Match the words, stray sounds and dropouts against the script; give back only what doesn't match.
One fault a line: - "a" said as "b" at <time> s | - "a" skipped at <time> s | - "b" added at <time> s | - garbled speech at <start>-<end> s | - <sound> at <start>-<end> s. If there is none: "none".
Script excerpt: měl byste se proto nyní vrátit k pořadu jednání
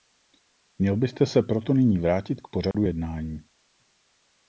- dropout at 2.7-2.7 s